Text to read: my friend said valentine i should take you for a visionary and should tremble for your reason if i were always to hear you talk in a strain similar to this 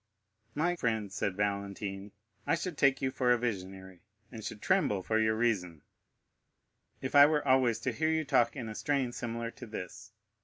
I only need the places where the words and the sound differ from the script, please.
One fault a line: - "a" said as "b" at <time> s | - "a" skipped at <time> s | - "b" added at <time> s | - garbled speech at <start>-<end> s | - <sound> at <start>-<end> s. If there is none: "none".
none